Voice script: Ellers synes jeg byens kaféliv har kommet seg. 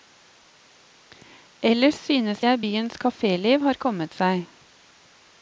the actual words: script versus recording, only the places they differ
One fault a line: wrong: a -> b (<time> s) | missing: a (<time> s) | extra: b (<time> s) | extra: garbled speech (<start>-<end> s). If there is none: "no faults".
no faults